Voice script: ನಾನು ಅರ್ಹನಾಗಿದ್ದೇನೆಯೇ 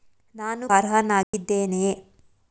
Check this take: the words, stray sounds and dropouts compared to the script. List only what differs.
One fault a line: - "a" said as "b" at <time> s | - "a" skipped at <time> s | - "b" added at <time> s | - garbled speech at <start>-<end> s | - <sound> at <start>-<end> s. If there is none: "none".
- dropout at 1.2-1.3 s